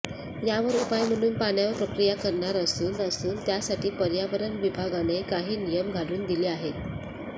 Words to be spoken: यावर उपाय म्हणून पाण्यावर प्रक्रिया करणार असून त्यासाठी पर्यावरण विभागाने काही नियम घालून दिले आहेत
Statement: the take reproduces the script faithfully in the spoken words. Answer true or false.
false